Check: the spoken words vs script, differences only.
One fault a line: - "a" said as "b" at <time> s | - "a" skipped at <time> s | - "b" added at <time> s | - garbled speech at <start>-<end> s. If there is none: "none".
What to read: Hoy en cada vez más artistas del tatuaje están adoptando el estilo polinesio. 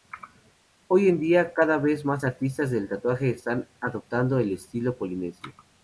- "día" added at 1.2 s